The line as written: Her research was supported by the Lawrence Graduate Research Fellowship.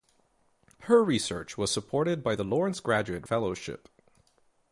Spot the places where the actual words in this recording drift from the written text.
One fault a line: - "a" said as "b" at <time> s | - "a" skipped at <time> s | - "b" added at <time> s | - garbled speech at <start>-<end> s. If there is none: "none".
- "Research" skipped at 3.3 s